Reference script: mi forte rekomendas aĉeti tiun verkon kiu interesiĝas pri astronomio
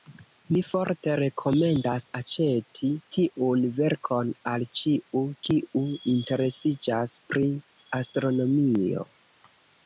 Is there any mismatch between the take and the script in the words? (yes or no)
yes